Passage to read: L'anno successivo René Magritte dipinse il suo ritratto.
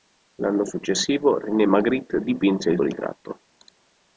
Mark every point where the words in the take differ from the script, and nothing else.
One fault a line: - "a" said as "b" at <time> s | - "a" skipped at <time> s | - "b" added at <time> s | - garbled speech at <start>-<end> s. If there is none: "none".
- "suo" skipped at 2.8 s